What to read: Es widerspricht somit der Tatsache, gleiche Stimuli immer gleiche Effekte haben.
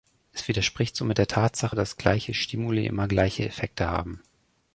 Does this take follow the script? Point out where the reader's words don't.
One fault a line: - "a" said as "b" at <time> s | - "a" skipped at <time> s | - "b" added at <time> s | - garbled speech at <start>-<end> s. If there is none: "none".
- "dass" added at 1.7 s